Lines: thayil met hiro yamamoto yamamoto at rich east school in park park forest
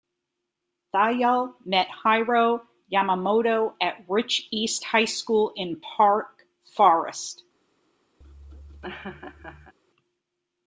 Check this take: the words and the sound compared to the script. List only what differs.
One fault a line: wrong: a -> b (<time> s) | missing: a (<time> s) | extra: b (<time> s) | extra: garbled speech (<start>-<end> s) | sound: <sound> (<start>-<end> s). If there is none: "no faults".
missing: yamamoto (3.7 s)
extra: high (4.9 s)
missing: park (6.3 s)
sound: laugh (8.2-9.7 s)